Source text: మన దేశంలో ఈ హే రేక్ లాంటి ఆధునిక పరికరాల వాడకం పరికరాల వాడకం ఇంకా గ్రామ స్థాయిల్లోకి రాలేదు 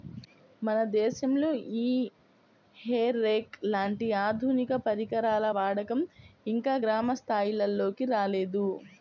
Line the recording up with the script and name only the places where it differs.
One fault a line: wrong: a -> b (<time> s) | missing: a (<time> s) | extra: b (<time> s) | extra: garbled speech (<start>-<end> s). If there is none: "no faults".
missing: పరికరాల వాడకం (6.0 s)